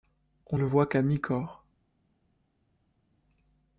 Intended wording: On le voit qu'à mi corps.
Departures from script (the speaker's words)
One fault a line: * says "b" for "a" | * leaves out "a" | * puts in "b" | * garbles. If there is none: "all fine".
all fine